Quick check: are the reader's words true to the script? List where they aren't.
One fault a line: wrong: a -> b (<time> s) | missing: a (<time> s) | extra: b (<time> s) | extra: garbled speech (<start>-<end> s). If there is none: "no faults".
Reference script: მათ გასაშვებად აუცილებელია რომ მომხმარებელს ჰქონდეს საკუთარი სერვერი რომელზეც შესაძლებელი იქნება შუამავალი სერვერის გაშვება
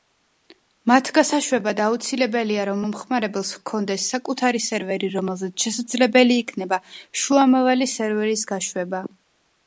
no faults